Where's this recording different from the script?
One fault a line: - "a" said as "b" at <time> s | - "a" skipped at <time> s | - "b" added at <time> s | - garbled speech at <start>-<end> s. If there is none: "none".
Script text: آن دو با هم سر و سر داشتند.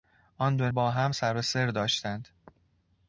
none